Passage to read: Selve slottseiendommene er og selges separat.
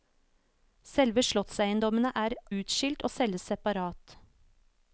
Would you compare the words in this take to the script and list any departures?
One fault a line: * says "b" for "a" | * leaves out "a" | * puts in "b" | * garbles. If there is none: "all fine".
* puts in "utskilt"